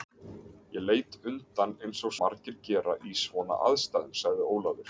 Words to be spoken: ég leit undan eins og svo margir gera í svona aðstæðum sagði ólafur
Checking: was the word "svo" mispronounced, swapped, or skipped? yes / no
yes